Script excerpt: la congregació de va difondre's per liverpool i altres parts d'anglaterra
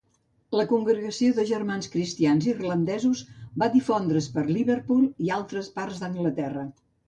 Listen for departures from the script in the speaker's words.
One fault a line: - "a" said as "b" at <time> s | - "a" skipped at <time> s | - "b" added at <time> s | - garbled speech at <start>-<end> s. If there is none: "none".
- "germans cristians irlandesos" added at 1.5 s